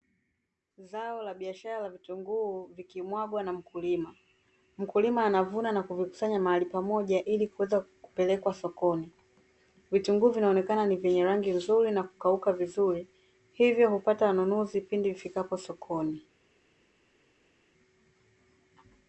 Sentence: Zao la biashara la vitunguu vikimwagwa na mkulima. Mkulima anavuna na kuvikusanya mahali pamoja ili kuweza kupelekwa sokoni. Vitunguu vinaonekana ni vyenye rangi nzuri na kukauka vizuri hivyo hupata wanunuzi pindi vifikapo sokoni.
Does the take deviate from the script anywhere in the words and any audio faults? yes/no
no